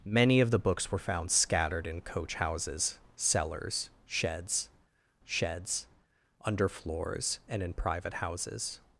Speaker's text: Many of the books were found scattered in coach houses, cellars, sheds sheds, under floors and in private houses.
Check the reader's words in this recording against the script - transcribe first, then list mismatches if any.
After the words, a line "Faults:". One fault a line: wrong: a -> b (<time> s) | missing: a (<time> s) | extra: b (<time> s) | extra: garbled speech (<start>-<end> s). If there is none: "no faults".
Many of the books were found scattered in coach houses, cellars, sheds sheds, under floors and in private houses.
Faults:
no faults